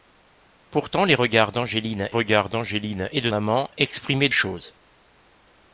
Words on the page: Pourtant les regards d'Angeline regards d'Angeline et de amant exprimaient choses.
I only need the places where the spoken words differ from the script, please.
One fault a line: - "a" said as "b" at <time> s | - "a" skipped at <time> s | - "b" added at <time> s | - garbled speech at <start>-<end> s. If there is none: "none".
none